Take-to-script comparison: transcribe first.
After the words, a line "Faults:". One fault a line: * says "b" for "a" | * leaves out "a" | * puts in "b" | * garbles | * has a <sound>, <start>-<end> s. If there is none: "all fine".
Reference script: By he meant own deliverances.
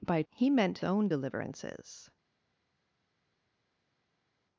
By he meant own deliverances.
Faults:
all fine